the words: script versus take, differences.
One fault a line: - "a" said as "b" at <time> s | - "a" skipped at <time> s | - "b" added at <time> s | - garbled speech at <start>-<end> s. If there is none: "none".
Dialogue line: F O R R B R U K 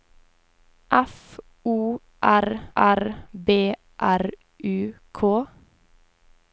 none